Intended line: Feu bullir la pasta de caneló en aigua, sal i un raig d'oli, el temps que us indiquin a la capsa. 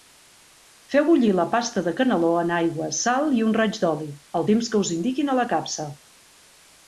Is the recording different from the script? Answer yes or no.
no